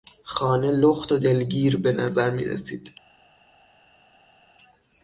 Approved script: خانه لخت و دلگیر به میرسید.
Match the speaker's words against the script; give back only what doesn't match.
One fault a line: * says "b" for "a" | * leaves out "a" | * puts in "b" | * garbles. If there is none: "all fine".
* puts in "نظر"